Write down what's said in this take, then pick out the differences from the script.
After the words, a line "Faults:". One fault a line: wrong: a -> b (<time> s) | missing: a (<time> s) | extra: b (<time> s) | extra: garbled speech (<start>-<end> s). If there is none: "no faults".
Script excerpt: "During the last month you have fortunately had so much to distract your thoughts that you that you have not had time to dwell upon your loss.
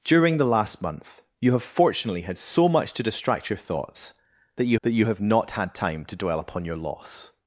"During the last month you have fortunately had so much to distract your thoughts that you that you have not had time to dwell upon your loss.
Faults:
no faults